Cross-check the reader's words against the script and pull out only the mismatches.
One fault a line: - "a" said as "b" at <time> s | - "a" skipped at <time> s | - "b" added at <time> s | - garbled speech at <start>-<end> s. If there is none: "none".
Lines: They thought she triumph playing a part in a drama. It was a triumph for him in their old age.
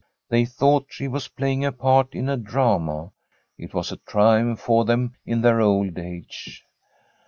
- "triumph" said as "was" at 1.1 s
- "him" said as "them" at 4.8 s